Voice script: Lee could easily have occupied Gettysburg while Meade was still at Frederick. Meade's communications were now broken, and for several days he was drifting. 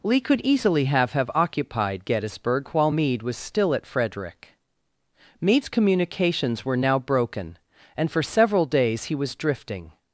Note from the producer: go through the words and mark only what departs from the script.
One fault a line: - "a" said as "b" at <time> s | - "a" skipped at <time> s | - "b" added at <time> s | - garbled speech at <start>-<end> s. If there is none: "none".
- "have" added at 1.1 s